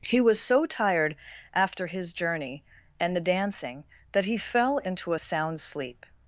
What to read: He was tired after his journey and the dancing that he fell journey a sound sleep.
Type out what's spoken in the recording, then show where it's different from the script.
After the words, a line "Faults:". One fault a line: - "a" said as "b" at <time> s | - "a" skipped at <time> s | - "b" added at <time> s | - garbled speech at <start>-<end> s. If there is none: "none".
He was so tired after his journey and the dancing that he fell into a sound sleep.
Faults:
- "so" added at 0.4 s
- "journey" said as "into" at 4.8 s